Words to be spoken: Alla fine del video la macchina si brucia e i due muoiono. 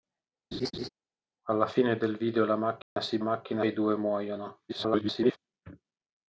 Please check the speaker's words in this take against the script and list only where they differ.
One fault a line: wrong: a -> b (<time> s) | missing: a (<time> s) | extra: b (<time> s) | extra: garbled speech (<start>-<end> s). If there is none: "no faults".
wrong: brucia -> macchina (3.2 s)
extra: garbled speech (4.7-5.4 s)